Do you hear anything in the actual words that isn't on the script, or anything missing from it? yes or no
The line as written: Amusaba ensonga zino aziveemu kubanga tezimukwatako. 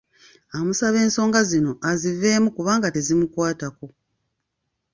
no